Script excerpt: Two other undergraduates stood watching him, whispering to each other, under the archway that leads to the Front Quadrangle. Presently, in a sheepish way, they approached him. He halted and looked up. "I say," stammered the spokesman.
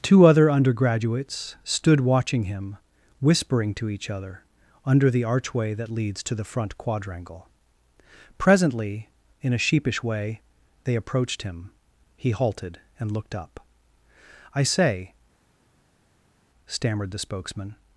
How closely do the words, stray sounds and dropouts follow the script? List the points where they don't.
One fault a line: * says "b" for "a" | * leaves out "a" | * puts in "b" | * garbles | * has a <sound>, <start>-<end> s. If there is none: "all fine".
all fine